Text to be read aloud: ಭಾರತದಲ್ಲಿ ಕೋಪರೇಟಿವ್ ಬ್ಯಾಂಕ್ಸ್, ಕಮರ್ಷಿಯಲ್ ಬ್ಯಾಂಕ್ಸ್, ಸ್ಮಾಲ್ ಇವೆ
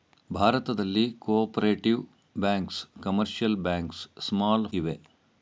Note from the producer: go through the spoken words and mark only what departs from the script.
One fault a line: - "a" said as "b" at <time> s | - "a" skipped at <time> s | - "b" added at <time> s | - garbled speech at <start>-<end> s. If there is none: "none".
none